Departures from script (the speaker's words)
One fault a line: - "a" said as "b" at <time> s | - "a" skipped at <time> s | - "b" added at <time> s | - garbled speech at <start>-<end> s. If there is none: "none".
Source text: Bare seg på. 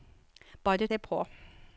none